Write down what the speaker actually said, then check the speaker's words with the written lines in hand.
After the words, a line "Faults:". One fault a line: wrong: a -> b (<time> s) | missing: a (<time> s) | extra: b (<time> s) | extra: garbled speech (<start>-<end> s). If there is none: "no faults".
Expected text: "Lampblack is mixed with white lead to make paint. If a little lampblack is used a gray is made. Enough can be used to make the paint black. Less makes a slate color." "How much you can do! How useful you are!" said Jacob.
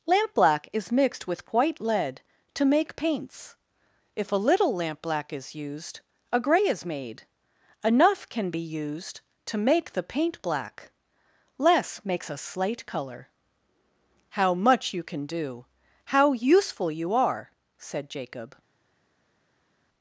"Lampblack is mixed with white lead to make paints. If a little lampblack is used a gray is made. Enough can be used to make the paint black. Less makes a slate color." "How much you can do! How useful you are!" said Jacob.
Faults:
wrong: paint -> paints (3.0 s)